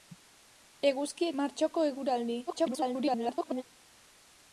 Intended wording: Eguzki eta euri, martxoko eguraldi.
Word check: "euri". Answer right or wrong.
wrong